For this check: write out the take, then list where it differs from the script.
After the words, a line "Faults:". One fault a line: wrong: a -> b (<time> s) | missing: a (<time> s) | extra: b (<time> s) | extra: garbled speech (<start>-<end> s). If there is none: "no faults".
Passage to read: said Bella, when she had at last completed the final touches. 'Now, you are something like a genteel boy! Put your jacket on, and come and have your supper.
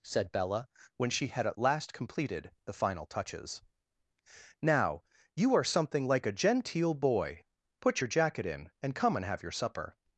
said Bella, when she had at last completed the final touches. 'Now, you are something like a genteel boy! Put your jacket in, and come and have your supper.
Faults:
wrong: on -> in (8.5 s)